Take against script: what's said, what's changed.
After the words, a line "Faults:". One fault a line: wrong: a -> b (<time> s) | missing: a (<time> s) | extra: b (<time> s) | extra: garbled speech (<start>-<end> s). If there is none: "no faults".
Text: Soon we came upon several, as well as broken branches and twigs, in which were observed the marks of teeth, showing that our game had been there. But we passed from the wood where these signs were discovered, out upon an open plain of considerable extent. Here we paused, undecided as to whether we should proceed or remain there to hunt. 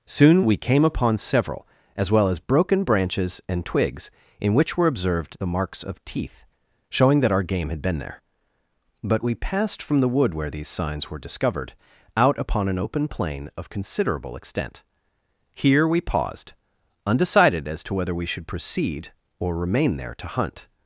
Soon we came upon several, as well as broken branches and twigs, in which were observed the marks of teeth, showing that our game had been there. But we passed from the wood where these signs were discovered, out upon an open plain of considerable extent. Here we paused, undecided as to whether we should proceed or remain there to hunt.
Faults:
no faults